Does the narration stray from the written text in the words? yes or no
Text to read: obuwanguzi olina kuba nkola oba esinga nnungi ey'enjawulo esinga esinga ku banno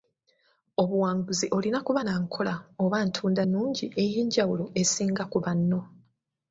yes